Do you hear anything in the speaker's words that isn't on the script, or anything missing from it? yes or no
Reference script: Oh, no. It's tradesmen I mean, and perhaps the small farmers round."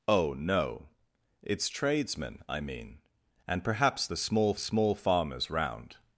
yes